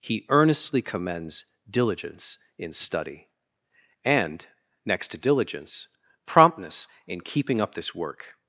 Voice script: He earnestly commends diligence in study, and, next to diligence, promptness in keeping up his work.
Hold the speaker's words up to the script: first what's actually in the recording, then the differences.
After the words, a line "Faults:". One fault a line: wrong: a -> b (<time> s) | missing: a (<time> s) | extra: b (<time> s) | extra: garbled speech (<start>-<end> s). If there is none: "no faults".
He earnestly commends diligence in study, and, next to diligence, promptness in keeping up this work.
Faults:
wrong: his -> this (7.8 s)